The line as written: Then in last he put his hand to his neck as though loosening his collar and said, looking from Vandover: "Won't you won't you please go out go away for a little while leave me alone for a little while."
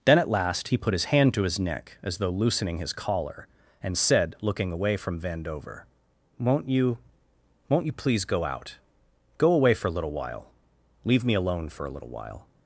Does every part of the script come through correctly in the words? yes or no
no